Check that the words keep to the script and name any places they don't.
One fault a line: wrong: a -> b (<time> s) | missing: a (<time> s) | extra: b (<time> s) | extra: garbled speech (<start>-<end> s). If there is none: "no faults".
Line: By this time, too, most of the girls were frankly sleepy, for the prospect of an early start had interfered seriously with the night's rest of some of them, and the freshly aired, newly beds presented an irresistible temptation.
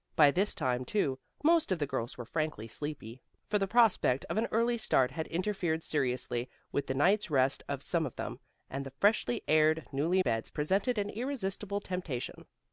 no faults